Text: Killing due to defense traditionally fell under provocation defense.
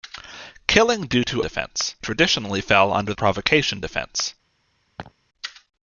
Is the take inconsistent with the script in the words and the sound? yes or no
yes